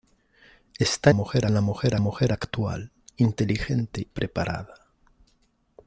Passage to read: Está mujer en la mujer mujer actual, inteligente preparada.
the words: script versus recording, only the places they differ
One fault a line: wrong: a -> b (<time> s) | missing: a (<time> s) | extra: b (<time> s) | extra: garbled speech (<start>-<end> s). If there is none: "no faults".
no faults